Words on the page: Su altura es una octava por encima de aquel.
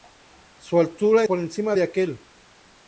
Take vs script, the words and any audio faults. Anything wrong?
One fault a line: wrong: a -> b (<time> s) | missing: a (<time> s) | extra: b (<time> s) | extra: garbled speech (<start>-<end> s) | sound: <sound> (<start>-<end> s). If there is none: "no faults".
missing: es una octava (1.2 s)